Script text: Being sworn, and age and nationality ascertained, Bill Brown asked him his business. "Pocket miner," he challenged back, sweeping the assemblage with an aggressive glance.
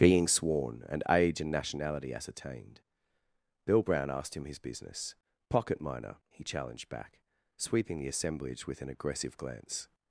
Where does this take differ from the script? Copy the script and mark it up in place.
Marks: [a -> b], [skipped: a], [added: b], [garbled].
Being sworn, and age and nationality ascertained, Bill Brown asked him his business. "Pocket miner," he challenged back, sweeping the assemblage with an aggressive glance.